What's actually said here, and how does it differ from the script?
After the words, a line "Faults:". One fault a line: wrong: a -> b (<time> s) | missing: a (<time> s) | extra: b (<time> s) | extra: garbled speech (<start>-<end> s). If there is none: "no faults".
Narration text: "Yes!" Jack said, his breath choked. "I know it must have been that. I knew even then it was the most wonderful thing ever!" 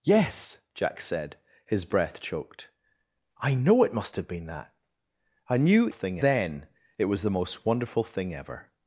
"Yes!" Jack said, his breath choked. "I know it must have been that. I knew thing then it was the most wonderful thing ever!"
Faults:
wrong: even -> thing (5.9 s)